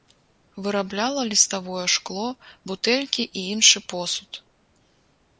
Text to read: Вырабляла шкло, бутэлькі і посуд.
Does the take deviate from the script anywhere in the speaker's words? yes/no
yes